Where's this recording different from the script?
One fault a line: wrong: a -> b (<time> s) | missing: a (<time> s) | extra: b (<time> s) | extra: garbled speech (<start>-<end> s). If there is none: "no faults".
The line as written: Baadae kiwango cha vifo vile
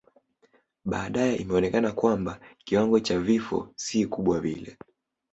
extra: imeonekana kwamba (1.3 s)
extra: si kubwa (3.7 s)